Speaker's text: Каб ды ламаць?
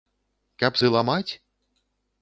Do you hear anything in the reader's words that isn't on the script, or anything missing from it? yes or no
no